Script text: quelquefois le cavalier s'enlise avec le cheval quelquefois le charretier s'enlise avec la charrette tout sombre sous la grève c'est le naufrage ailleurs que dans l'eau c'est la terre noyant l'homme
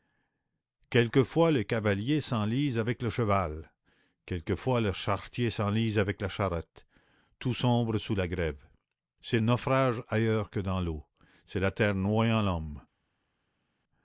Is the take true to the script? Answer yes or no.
no